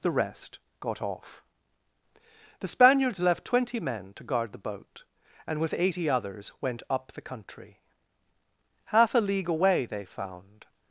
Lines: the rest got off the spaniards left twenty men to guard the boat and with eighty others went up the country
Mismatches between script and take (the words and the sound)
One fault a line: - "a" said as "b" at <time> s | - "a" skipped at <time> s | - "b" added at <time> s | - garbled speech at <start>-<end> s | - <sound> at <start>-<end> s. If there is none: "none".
- "half a league away they found" added at 8.8 s